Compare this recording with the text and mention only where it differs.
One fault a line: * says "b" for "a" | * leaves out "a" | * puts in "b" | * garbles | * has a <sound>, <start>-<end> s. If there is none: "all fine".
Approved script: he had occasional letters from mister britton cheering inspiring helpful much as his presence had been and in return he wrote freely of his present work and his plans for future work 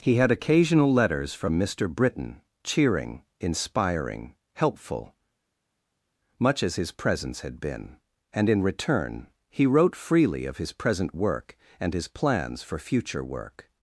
all fine